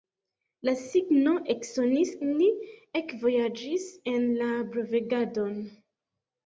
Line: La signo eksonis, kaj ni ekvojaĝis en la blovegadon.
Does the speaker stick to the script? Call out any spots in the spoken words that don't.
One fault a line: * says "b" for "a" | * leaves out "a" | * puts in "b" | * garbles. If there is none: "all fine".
* leaves out "kaj"